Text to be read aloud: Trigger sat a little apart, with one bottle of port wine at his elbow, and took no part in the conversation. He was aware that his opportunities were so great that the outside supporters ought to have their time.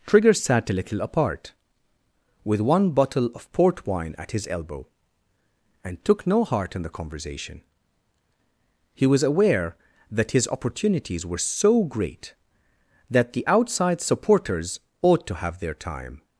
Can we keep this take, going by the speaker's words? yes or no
no